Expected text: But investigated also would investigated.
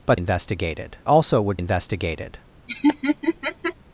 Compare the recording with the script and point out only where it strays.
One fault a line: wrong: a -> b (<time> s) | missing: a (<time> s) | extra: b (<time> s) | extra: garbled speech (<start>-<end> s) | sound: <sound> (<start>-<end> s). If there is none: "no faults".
sound: laugh (2.7-3.7 s)